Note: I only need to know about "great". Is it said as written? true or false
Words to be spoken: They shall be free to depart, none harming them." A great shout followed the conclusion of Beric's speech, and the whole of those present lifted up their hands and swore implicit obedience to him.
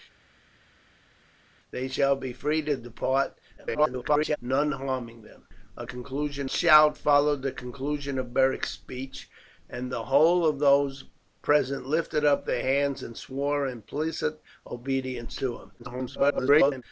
false